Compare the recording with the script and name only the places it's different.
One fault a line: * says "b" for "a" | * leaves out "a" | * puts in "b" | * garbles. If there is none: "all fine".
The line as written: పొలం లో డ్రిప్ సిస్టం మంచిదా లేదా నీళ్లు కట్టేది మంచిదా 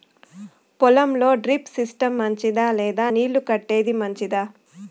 all fine